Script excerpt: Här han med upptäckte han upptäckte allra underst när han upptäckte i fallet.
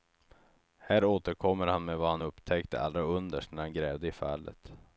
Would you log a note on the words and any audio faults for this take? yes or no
yes